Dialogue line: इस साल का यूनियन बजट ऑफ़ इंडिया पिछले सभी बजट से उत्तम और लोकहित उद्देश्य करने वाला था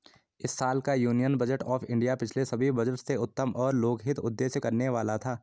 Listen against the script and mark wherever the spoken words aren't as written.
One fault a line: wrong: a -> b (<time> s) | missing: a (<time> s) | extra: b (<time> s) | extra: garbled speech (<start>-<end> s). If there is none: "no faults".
no faults